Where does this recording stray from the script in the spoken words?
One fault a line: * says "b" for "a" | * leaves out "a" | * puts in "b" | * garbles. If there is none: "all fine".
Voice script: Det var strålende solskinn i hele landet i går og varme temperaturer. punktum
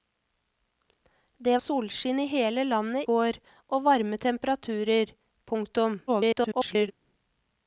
* leaves out "var strålende"
* leaves out "i"
* garbles